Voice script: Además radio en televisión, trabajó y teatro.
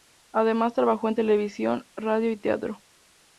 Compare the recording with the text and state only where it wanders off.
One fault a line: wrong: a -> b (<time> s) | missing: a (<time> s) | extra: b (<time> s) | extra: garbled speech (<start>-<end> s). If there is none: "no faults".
wrong: radio -> trabajó (0.7 s)
wrong: trabajó -> radio (2.0 s)